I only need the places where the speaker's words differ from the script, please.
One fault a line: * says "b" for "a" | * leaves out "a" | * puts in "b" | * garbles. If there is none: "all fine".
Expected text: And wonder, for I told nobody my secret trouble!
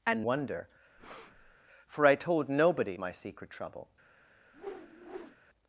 all fine